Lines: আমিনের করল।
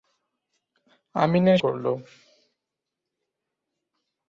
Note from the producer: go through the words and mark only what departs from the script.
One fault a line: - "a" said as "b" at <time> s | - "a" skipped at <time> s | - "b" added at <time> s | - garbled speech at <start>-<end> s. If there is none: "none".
none